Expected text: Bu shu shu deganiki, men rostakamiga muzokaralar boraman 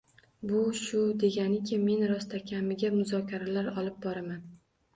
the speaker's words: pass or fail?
fail